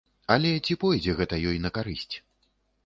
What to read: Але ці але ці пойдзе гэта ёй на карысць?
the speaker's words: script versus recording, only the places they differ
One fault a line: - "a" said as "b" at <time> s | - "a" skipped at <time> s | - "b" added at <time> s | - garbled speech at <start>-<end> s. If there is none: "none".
- "але ці" skipped at 0.8 s